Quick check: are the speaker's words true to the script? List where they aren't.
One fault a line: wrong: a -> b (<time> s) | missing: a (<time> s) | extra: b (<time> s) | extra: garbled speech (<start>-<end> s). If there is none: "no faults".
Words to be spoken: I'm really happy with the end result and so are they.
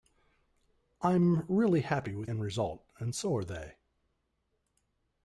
missing: the (2.3 s)